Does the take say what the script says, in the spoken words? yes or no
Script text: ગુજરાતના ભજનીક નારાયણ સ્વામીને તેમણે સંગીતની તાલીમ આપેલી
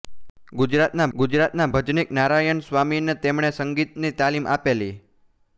no